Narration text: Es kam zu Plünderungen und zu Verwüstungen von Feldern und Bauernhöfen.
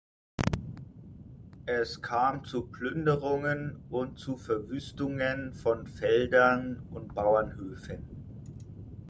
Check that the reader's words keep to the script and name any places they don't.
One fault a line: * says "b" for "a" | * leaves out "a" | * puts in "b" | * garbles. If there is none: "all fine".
all fine